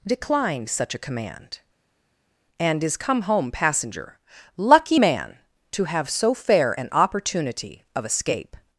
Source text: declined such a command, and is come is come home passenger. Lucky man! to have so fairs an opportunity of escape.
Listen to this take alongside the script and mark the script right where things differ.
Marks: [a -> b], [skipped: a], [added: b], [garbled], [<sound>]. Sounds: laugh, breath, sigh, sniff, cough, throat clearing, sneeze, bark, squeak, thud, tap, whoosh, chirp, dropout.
declined such a command, and is come [skipped: is come] home passenger. Lucky man! to have so [fairs -> fair] an opportunity of escape.